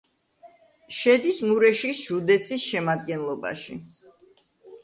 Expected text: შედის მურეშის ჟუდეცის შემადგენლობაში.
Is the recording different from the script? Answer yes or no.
no